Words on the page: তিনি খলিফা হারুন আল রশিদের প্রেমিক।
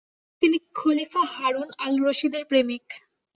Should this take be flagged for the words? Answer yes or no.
no